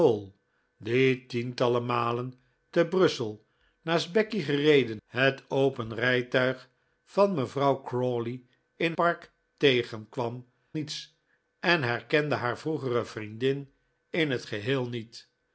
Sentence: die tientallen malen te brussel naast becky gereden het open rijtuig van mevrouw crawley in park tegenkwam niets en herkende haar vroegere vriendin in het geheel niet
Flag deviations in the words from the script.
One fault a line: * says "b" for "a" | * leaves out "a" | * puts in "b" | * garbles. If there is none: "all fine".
all fine